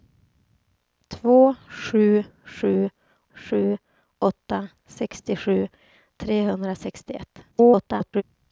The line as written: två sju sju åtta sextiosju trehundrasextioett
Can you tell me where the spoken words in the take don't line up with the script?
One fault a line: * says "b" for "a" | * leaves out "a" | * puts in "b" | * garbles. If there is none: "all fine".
* puts in "sju"
* garbles